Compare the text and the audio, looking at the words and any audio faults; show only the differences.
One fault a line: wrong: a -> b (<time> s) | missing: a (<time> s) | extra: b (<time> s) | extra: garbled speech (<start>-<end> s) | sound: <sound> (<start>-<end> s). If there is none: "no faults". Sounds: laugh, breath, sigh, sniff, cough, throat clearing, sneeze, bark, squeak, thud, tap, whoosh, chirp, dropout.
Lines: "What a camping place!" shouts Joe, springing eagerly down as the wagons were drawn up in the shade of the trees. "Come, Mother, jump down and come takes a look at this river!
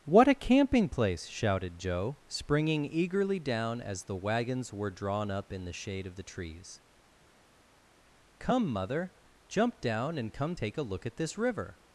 wrong: shouts -> shouted (1.3 s)
wrong: takes -> take (10.5 s)